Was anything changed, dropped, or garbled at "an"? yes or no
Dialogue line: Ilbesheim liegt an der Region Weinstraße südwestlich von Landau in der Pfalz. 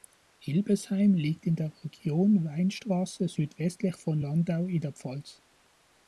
yes